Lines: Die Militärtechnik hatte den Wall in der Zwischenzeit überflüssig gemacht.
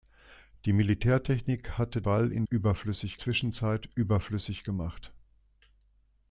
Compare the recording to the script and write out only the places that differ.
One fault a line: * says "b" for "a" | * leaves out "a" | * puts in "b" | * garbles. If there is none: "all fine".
* leaves out "den"
* says "überflüssig" for "der"